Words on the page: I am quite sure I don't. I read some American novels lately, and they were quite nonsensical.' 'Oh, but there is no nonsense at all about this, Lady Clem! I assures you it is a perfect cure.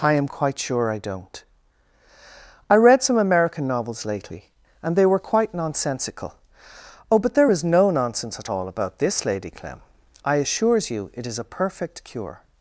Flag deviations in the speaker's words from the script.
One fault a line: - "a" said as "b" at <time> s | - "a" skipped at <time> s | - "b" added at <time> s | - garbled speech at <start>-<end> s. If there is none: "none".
none